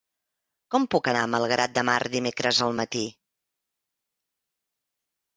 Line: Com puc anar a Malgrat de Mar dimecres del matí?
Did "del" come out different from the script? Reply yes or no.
yes